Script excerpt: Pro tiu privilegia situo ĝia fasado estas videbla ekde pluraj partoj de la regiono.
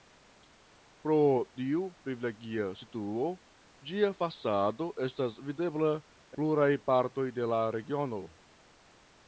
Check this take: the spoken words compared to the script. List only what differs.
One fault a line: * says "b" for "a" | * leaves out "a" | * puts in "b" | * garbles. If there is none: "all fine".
* leaves out "ekde"